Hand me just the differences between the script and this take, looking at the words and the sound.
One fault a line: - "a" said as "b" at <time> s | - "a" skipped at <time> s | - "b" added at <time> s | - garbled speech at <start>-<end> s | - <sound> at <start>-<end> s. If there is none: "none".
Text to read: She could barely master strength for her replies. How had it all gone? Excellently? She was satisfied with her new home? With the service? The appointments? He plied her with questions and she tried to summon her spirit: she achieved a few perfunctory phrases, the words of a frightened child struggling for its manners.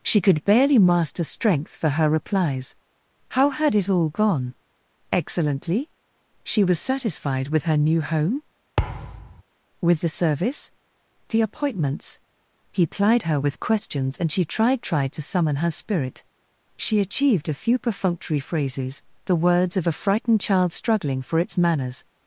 - thud at 8.8-9.4 s
- "tried" added at 14.8 s